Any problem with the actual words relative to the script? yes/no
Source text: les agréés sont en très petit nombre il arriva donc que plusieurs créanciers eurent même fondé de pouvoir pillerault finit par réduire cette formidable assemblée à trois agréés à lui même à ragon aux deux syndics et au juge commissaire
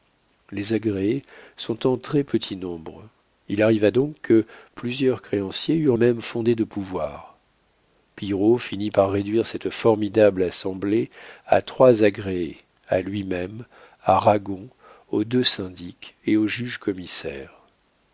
no